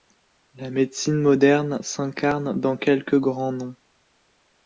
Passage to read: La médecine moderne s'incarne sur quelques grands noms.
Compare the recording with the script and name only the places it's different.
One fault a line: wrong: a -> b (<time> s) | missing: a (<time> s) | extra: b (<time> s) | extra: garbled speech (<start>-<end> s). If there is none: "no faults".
wrong: sur -> dans (2.6 s)